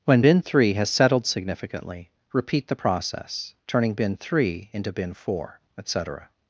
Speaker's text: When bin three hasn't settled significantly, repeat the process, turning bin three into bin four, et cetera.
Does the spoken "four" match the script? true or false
true